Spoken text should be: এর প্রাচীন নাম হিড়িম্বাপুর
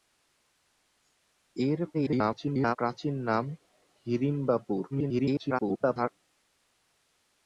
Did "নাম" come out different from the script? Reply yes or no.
no